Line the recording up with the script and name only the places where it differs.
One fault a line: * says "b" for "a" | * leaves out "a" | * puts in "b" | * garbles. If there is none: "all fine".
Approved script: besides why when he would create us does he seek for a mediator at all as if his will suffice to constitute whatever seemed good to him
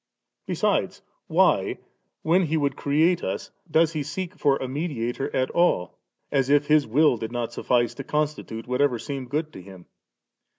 * puts in "did not"